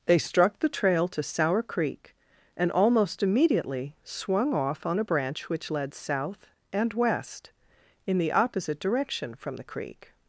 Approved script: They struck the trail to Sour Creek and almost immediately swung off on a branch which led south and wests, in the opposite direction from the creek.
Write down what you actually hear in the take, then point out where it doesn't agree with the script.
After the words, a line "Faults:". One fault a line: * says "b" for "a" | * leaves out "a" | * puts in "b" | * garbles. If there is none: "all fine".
They struck the trail to Sour Creek and almost immediately swung off on a branch which led south and west, in the opposite direction from the creek.
Faults:
* says "west" for "wests"